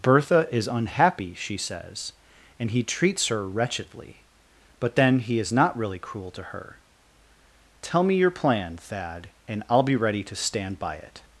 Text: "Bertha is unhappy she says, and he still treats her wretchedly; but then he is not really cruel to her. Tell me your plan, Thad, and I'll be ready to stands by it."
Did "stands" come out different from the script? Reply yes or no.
yes